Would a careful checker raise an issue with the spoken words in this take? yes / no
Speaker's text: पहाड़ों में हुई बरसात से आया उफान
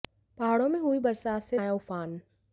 no